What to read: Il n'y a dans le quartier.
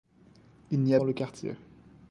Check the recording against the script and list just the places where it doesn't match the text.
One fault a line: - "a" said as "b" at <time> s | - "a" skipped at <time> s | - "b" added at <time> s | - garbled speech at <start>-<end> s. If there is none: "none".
none